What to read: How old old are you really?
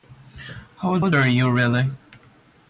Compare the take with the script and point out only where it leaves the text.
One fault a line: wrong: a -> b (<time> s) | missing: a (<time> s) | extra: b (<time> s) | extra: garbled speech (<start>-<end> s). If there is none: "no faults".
no faults